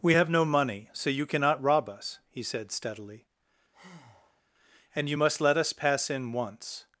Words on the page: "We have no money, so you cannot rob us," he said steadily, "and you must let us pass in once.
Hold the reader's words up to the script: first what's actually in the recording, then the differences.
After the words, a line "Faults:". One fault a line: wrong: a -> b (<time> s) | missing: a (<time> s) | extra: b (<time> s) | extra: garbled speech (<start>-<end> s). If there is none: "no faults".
"We have no money, so you cannot rob us," he said steadily, "and you must let us pass in once.
Faults:
no faults